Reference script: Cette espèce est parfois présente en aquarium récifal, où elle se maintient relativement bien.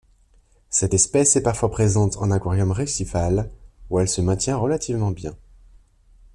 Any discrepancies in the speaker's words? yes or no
no